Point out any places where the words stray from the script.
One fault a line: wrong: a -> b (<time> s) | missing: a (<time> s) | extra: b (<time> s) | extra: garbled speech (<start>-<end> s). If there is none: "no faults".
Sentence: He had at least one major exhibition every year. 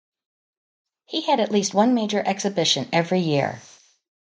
no faults